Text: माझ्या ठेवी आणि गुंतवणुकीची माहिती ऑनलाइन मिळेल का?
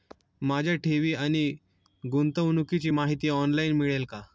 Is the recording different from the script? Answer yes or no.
no